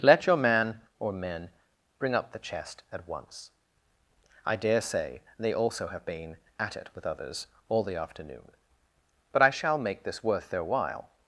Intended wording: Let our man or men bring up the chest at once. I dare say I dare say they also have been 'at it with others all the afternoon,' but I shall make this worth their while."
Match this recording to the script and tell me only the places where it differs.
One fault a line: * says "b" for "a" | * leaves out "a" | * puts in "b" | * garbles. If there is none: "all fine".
* says "your" for "our"
* leaves out "I dare say"